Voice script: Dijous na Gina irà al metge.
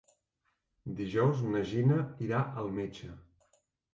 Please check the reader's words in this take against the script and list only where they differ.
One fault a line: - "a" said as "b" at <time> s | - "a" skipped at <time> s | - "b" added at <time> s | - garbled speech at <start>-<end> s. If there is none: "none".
none